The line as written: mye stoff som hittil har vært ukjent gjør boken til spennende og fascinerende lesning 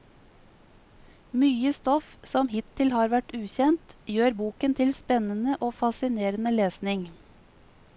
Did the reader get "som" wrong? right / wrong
right